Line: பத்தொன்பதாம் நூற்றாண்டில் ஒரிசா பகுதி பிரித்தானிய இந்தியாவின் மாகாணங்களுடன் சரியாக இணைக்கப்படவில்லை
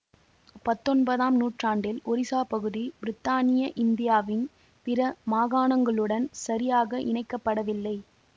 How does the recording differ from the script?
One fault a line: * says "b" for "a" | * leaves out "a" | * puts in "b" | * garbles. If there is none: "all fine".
* puts in "பிற"